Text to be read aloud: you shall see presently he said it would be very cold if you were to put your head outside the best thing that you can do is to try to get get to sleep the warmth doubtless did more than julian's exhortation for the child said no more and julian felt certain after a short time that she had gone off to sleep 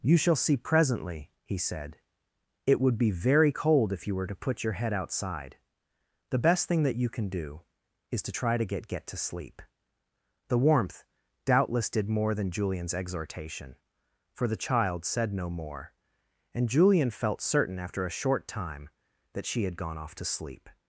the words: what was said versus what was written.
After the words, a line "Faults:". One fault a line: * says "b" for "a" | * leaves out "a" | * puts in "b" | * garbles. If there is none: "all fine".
you shall see presently he said it would be very cold if you were to put your head outside the best thing that you can do is to try to get get to sleep the warmth doubtless did more than julian's exhortation for the child said no more and julian felt certain after a short time that she had gone off to sleep
Faults:
all fine